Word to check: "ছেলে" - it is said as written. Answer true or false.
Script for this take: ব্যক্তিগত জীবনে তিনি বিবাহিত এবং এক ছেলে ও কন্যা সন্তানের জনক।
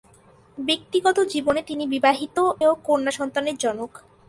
false